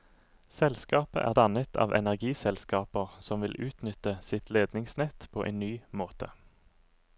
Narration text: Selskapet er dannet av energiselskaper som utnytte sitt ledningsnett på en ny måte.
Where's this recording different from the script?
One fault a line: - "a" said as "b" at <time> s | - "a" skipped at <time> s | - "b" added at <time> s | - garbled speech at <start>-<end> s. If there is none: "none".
- "vil" added at 3.5 s